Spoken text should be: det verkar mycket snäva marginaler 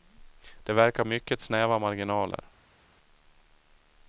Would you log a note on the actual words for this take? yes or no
no